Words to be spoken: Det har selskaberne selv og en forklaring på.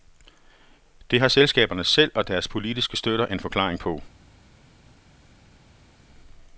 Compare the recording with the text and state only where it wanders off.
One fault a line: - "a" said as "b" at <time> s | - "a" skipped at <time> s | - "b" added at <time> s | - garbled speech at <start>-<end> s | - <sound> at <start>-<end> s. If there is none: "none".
- "deres politiske støtter" added at 2.3 s